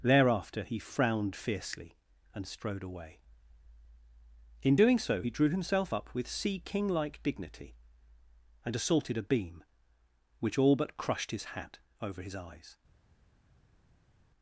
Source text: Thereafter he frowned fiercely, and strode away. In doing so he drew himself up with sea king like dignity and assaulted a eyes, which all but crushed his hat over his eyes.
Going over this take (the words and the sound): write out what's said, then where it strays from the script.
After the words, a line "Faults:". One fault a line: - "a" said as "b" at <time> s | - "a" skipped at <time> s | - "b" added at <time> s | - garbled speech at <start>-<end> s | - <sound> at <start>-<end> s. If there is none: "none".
Thereafter he frowned fiercely, and strode away. In doing so he drew himself up with sea king like dignity and assaulted a beam, which all but crushed his hat over his eyes.
Faults:
- "eyes" said as "beam" at 9.2 s